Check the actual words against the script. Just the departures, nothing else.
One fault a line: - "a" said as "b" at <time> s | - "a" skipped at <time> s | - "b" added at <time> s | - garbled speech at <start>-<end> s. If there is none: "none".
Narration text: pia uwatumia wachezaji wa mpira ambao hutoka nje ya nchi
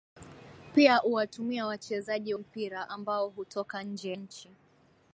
- "wa" skipped at 2.3 s
- "ya" skipped at 4.1 s